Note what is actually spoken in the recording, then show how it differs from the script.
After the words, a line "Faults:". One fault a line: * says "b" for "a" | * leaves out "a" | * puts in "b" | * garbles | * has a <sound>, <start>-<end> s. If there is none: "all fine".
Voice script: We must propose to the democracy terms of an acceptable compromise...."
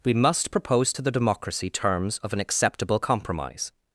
We must propose to the democracy terms of an acceptable compromise...."
Faults:
all fine